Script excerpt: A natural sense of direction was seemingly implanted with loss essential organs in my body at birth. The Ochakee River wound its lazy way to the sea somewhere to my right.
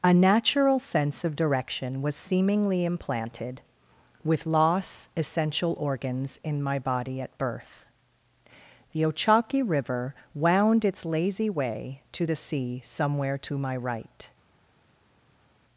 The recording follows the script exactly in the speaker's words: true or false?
true